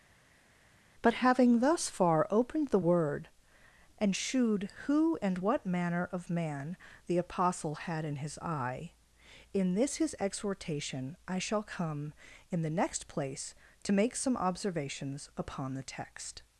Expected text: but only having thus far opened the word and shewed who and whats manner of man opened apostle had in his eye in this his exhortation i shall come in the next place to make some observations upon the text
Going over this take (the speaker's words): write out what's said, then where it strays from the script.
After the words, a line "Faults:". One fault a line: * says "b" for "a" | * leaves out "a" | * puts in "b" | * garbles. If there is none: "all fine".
but having thus far opened the word and shewed who and what manner of man the apostle had in his eye in this his exhortation i shall come in the next place to make some observations upon the text
Faults:
* leaves out "only"
* says "what" for "whats"
* says "the" for "opened"